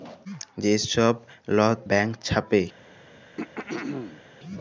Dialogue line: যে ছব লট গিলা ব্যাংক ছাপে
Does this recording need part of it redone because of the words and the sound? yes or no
yes